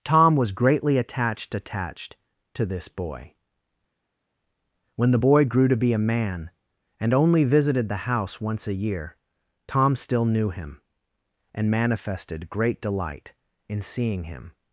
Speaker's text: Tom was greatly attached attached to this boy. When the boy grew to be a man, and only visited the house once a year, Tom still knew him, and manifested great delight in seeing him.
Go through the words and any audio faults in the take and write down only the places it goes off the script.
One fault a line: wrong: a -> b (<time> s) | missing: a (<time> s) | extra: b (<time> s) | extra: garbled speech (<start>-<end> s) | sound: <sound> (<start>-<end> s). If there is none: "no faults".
no faults